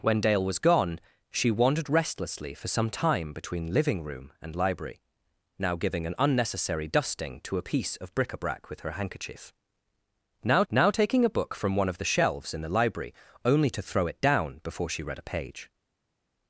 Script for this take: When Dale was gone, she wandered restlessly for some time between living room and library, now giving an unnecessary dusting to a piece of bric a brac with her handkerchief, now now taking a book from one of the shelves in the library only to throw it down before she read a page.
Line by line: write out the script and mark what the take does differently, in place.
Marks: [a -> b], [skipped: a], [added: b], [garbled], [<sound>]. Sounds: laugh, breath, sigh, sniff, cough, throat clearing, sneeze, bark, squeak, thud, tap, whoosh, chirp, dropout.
When Dale was gone, she wandered restlessly for some time between living room and library, now giving an unnecessary dusting to a piece of bric a brac with her handkerchief, now now taking a book from one of the shelves in the library only to throw it down before she read a page.